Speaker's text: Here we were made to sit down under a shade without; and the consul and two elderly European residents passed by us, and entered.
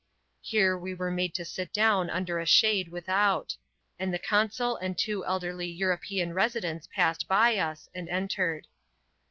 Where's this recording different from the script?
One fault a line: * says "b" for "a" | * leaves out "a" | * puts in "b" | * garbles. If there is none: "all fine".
all fine